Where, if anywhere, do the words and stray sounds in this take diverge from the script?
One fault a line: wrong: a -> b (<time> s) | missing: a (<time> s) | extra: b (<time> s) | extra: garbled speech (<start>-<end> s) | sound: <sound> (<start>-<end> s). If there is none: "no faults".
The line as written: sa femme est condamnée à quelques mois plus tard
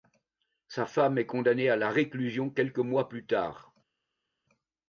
extra: la réclusion (1.8 s)